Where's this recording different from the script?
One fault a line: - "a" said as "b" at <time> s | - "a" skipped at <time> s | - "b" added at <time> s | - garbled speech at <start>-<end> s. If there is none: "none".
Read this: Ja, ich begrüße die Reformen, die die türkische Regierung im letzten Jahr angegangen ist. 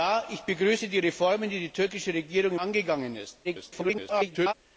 - "im letzten Jahr" skipped at 2.5 s
- garbled speech at 3.4-4.5 s